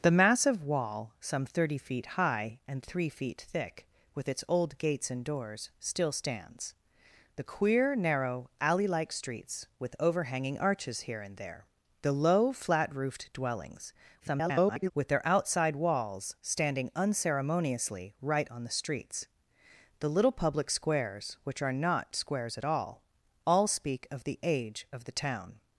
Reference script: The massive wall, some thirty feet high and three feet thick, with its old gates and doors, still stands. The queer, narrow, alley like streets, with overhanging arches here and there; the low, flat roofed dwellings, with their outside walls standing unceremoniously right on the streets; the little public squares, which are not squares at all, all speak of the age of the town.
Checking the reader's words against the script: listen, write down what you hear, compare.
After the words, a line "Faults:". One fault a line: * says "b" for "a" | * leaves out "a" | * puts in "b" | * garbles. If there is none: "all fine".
The massive wall, some thirty feet high and three feet thick, with its old gates and doors, still stands. The queer, narrow, alley like streets, with overhanging arches here and there; the low, flat roofed dwellings, [garbled] with their outside walls standing unceremoniously right on the streets; the little public squares, which are not squares at all, all speak of the age of the town.
Faults:
* garbles